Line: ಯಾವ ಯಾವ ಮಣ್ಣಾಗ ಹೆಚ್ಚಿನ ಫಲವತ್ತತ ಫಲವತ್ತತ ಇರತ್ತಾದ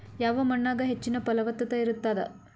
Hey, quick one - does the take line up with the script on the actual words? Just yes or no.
no